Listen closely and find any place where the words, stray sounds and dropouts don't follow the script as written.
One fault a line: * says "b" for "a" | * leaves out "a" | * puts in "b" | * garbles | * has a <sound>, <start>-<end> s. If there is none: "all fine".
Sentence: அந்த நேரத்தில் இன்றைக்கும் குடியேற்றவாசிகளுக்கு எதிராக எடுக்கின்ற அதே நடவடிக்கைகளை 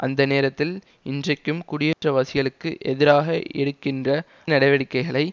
* has a dropout, 1.9-2.0 s
* leaves out "அதே"